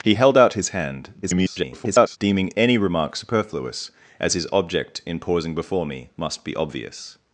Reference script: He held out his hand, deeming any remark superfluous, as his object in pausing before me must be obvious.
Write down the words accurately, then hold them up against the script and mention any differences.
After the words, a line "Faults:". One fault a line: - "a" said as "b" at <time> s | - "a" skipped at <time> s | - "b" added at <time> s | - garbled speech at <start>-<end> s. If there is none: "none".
He held out his hand, [garbled] deeming any remark superfluous, as his object in pausing before me must be obvious.
Faults:
- garbled speech at 1.2-2.2 s